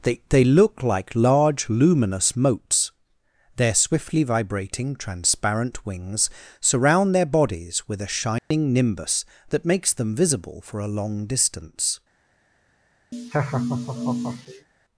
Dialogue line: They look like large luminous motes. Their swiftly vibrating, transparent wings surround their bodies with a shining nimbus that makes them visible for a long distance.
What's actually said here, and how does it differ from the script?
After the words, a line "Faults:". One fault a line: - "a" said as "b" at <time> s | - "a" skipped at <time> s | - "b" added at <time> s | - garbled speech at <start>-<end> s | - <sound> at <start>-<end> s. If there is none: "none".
They they look like large luminous motes. Their swiftly vibrating, transparent wings surround their bodies with a shining nimbus that makes them visible for a long distance.
Faults:
- "they" added at 0.3 s
- dropout at 8.4-8.5 s
- laugh at 13.1-14.7 s